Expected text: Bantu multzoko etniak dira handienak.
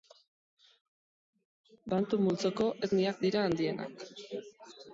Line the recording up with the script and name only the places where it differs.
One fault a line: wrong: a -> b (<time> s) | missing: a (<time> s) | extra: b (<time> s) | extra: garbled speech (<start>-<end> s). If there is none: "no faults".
no faults